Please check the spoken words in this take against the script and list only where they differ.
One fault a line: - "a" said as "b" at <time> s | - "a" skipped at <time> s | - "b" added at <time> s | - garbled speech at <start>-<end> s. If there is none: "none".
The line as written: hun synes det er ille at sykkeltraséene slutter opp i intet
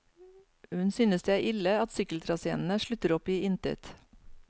none